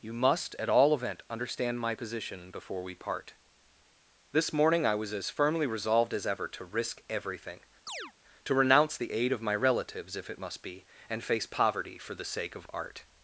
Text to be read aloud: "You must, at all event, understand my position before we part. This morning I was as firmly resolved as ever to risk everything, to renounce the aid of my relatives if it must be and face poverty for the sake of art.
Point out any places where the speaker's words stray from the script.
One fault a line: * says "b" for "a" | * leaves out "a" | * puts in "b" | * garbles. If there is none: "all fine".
all fine